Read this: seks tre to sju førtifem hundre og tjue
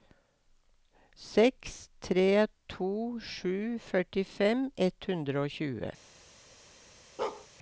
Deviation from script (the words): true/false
true